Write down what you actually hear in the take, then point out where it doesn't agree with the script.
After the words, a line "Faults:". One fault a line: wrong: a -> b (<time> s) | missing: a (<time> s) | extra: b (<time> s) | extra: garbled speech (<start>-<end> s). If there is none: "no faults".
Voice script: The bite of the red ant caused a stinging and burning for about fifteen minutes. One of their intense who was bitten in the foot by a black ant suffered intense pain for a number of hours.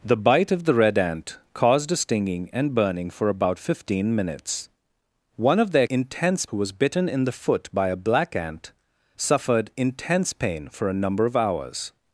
The bite of the red ant caused a stinging and burning for about fifteen minutes. One of their intense who was bitten in the foot by a black ant suffered intense pain for a number of hours.
Faults:
no faults